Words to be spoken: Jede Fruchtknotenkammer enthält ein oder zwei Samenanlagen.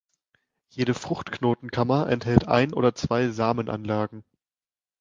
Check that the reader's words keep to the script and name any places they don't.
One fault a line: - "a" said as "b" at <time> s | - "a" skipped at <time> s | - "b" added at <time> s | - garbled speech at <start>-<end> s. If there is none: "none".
none